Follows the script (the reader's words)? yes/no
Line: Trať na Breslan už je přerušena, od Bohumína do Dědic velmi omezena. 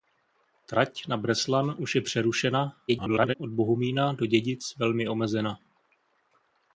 no